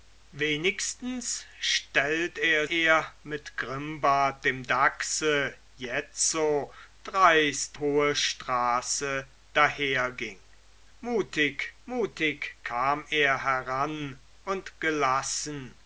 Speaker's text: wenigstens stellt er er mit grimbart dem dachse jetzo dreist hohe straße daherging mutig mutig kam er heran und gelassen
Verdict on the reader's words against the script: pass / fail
pass